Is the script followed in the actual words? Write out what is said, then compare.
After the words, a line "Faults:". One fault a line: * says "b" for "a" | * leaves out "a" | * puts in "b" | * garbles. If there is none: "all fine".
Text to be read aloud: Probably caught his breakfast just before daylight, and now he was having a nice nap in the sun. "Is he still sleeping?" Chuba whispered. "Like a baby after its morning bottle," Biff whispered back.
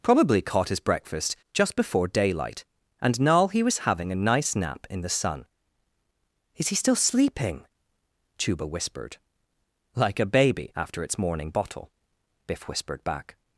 Probably caught his breakfast just before daylight, and now he was having a nice nap in the sun. "Is he still sleeping?" Chuba whispered. "Like a baby after its morning bottle," Biff whispered back.
Faults:
all fine